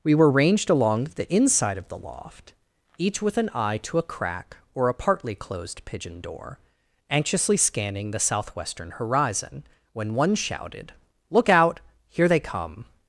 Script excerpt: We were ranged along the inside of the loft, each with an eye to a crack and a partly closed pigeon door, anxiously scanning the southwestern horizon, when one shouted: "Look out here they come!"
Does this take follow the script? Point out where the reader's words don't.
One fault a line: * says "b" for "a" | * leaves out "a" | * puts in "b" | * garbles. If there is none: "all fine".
* says "or" for "and"